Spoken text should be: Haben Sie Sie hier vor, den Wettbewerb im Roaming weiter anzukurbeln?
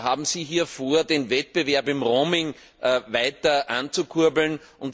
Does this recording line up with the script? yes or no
no